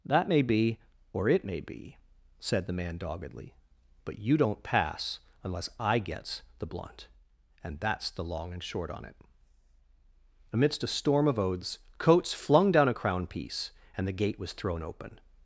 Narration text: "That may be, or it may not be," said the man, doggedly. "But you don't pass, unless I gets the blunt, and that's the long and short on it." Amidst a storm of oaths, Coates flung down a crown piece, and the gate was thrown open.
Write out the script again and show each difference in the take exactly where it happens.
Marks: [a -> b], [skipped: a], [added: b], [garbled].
"That may be, or it may [skipped: not] be," said the man, doggedly. "But you don't pass, unless I gets the blunt, and that's the long and short on it." Amidst a storm of oaths, Coates flung down a crown piece, and the gate was thrown open.